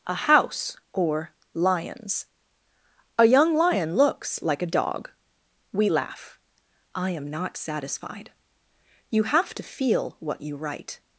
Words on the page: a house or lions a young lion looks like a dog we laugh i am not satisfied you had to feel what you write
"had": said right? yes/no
no